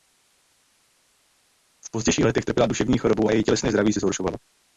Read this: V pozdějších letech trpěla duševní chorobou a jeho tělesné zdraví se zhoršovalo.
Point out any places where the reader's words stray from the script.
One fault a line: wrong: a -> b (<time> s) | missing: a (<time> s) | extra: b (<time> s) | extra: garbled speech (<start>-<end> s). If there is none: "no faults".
wrong: jeho -> její (3.3 s)